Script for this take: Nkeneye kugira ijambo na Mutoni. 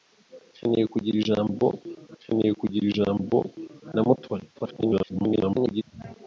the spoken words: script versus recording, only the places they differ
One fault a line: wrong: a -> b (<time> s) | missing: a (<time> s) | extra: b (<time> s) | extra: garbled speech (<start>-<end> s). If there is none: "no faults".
extra: nkeneye kugira ijambo (2.2 s)
extra: garbled speech (4.6-5.8 s)